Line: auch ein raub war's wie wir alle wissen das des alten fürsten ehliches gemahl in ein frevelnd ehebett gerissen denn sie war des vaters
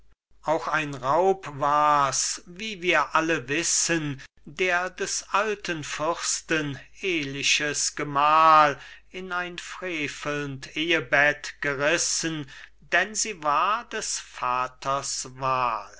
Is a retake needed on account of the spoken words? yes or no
yes